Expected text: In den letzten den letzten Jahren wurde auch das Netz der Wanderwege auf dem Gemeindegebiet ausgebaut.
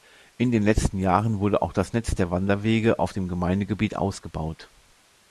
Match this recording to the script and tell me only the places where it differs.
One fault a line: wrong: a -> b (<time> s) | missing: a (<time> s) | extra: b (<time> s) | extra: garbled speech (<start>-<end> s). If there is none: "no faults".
missing: den letzten (1.0 s)